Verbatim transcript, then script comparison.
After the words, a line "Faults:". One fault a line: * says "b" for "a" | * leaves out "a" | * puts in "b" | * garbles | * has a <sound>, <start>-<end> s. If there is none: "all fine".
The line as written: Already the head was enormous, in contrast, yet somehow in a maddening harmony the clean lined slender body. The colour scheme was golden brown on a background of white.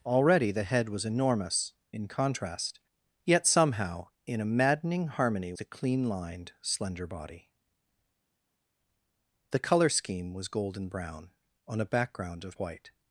Already the head was enormous, in contrast, yet somehow in a maddening harmony the clean lined slender body. The colour scheme was golden brown on a background of white.
Faults:
all fine